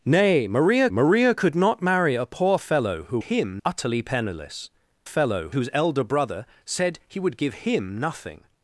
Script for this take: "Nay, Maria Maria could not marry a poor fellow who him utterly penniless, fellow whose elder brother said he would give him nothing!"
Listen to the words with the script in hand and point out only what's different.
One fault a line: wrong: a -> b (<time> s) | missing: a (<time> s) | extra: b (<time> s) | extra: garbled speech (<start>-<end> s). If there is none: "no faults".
no faults